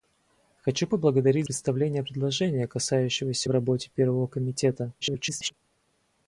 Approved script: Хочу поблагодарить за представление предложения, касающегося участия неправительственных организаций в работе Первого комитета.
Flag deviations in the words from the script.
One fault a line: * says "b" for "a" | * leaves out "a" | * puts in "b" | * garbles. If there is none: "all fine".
* leaves out "за"
* leaves out "участия неправительственных организаций"
* garbles